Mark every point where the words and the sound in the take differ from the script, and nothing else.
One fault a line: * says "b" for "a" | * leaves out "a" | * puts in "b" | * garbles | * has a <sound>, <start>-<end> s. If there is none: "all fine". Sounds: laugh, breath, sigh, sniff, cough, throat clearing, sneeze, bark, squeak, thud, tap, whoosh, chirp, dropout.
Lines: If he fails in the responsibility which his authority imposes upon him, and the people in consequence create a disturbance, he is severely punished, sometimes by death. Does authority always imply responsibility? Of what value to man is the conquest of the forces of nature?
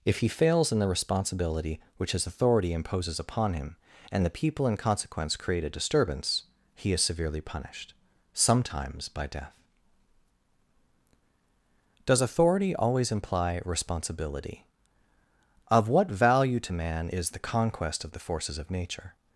all fine